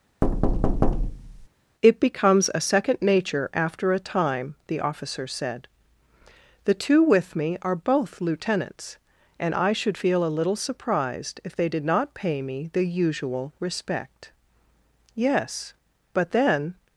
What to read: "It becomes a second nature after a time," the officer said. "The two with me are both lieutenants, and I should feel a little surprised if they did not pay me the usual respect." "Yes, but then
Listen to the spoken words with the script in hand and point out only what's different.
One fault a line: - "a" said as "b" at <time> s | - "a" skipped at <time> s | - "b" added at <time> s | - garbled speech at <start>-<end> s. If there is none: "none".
none